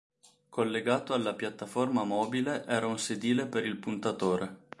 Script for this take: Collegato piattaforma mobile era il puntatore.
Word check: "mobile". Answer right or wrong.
right